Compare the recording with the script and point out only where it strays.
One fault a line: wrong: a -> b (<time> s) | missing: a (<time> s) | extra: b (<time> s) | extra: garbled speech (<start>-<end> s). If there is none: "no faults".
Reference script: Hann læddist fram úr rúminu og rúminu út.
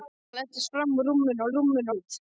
no faults